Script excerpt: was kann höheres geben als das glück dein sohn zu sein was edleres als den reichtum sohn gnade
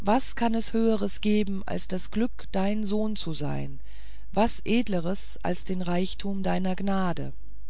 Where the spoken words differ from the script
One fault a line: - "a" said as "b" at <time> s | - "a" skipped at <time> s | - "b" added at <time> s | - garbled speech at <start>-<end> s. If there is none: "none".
- "es" added at 0.6 s
- "sohn" said as "deiner" at 6.4 s